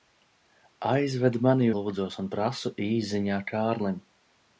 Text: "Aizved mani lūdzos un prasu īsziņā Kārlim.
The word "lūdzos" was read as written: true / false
true